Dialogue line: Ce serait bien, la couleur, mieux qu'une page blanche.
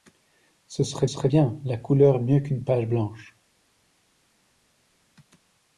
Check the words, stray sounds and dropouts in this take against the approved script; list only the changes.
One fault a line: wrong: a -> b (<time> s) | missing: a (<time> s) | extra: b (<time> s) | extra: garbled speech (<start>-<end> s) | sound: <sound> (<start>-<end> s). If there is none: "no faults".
extra: serait (1.1 s)